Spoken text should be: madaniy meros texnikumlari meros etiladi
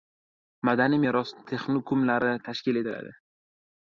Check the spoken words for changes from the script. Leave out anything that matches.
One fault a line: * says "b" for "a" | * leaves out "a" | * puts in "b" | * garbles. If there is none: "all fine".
* says "tashkil" for "meros"